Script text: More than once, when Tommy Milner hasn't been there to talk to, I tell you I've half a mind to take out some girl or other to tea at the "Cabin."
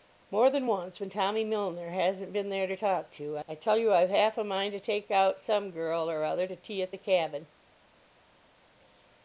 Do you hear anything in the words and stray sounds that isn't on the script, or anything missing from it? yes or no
no